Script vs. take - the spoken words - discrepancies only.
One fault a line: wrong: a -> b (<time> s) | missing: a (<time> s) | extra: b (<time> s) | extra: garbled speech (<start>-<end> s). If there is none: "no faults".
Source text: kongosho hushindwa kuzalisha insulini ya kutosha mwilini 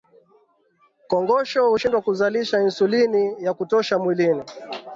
no faults